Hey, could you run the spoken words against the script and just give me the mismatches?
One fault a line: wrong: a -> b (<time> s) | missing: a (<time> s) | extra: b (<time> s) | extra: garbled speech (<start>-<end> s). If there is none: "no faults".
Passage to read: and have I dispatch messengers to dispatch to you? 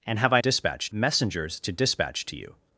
no faults